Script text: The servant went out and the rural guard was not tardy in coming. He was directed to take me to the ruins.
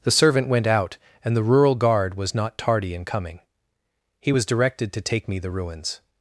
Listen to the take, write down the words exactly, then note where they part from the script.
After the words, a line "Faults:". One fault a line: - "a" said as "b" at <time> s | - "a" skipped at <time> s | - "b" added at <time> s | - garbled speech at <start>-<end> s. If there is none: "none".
The servant went out and the rural guard was not tardy in coming. He was directed to take me the ruins.
Faults:
- "to" skipped at 5.4 s